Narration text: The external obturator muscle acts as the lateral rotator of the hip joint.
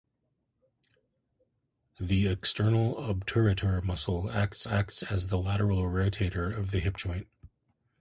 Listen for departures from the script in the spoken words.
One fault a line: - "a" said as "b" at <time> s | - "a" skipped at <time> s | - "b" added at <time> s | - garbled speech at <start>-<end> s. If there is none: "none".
- "acts" added at 4.7 s